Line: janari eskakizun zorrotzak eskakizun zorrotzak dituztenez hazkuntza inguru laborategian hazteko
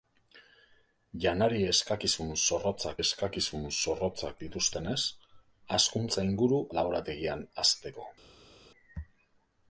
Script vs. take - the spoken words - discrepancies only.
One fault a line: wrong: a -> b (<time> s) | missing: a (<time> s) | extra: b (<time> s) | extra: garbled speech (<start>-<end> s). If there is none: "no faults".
no faults